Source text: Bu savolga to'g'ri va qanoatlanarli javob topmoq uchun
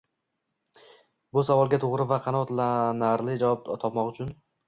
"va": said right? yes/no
yes